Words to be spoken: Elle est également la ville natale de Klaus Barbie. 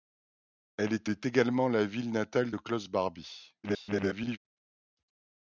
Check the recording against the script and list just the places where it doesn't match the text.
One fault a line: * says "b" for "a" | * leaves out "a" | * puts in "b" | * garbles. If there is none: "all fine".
* puts in "est"
* garbles